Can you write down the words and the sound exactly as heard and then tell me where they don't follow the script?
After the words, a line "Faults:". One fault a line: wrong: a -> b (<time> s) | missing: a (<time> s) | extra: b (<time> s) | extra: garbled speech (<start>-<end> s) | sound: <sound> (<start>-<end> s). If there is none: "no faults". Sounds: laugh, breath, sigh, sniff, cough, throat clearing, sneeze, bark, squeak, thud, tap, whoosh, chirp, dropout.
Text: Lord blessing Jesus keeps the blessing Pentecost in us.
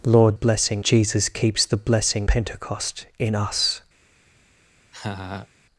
Lord blessing Jesus keeps the blessing Pentecost in us.
Faults:
sound: laugh (4.9-5.5 s)